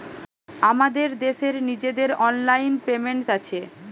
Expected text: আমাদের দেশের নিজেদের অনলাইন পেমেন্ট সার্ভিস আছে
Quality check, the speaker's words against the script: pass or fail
fail